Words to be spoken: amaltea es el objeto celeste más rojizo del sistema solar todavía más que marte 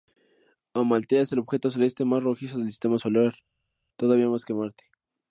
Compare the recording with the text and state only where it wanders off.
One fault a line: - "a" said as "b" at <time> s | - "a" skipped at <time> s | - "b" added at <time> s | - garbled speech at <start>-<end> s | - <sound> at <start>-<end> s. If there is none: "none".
none